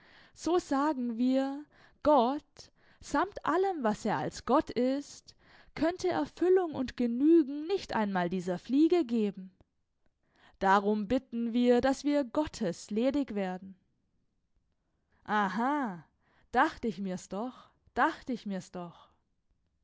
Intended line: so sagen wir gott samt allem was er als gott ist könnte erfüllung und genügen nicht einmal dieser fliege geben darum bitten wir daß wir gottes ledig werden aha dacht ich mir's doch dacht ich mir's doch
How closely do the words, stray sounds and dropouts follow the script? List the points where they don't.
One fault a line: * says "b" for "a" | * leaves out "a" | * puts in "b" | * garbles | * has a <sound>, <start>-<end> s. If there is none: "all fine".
all fine